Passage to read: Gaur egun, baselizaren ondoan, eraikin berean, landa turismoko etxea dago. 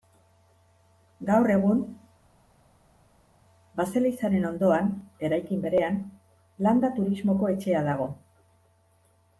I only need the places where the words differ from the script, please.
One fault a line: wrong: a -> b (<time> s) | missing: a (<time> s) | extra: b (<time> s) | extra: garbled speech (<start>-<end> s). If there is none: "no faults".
no faults